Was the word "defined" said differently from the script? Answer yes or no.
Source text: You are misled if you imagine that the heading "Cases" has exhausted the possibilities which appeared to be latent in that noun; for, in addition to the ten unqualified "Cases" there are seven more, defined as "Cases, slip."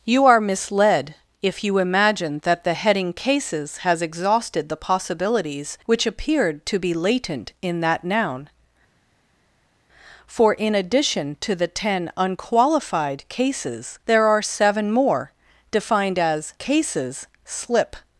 no